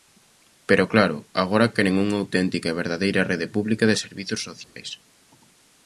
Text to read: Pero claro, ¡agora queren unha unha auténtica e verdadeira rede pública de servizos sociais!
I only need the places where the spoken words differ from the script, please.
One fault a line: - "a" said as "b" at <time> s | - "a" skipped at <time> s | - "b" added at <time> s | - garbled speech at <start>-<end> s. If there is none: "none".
- "unha" skipped at 2.2 s